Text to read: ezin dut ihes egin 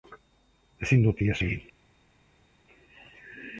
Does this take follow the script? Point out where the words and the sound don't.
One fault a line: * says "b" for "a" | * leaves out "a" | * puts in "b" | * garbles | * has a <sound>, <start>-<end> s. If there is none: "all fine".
all fine